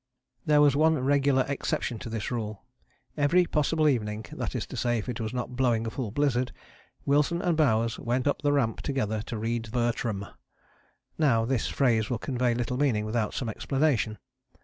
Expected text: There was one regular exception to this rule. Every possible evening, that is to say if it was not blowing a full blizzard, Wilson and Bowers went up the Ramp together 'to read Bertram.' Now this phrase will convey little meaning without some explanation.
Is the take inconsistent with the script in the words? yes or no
no